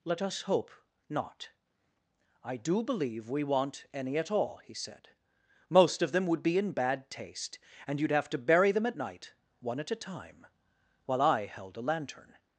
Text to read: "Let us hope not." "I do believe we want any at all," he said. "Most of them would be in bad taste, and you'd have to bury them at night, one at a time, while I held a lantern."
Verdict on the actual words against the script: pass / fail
pass